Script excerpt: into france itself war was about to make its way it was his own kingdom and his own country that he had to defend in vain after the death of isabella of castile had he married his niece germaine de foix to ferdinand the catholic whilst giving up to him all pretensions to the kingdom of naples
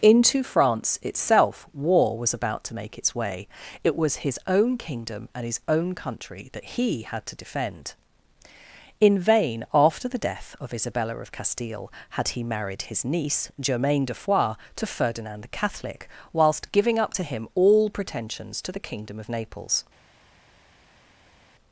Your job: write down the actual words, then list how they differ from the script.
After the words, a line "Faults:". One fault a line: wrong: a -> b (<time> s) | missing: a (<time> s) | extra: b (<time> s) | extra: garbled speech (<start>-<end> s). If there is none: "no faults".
into france itself war was about to make its way it was his own kingdom and his own country that he had to defend in vain after the death of isabella of castile had he married his niece germaine de foix to ferdinand the catholic whilst giving up to him all pretensions to the kingdom of naples
Faults:
no faults